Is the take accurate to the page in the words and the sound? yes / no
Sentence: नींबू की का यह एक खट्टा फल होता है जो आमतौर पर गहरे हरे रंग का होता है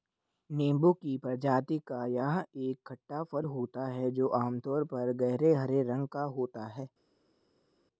no